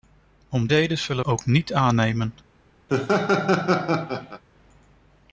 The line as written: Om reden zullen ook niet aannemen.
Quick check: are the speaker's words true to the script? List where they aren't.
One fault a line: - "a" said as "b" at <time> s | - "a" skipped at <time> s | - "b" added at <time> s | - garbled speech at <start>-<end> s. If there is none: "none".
none